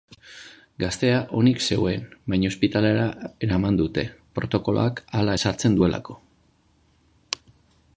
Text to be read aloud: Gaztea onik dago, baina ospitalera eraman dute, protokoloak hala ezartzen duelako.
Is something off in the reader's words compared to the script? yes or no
yes